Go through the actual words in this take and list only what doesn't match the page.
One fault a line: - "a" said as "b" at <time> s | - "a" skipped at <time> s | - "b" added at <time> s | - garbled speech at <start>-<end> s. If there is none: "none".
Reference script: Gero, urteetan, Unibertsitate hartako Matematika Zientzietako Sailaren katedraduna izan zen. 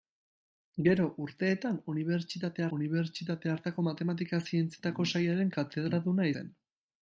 - "Unibertsitate" added at 2.8 s
- "izan" skipped at 6.3 s